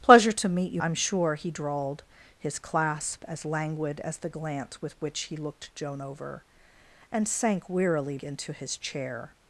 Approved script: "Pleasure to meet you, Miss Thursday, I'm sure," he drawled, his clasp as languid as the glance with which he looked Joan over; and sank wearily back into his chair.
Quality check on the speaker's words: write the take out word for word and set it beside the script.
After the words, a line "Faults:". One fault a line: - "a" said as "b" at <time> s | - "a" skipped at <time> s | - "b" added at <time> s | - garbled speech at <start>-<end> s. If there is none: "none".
"Pleasure to meet you, I'm sure," he drawled, his clasp as languid as the glance with which he looked Joan over; and sank wearily into his chair.
Faults:
- "Miss Thursday" skipped at 0.8 s
- "back" skipped at 8.2 s